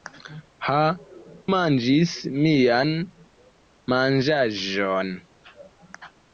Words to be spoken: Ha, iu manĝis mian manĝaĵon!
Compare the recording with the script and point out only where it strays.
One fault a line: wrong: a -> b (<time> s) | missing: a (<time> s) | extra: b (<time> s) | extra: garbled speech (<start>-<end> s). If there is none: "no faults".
missing: iu (0.8 s)